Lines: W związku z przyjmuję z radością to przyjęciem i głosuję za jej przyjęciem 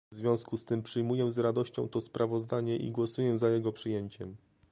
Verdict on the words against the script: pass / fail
fail